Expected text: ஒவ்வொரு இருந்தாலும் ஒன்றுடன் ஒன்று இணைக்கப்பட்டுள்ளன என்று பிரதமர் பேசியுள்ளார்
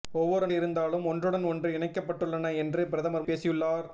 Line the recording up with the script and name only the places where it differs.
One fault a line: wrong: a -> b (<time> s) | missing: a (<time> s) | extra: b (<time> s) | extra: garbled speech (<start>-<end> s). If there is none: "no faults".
no faults